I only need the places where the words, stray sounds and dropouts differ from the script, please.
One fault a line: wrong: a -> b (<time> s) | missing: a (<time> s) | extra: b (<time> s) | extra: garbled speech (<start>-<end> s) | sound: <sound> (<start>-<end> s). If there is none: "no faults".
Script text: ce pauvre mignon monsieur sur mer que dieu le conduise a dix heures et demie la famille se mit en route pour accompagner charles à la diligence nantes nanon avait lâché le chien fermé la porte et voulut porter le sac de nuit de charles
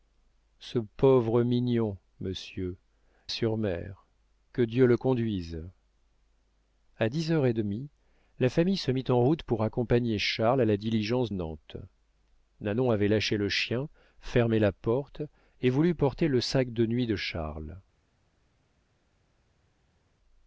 no faults